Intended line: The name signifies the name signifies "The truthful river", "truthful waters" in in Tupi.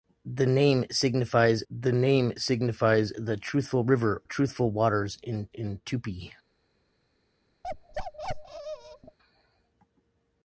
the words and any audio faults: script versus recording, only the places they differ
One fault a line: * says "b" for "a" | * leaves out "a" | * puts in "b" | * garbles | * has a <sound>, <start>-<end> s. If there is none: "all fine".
* has a bark, 7.6-9.2 s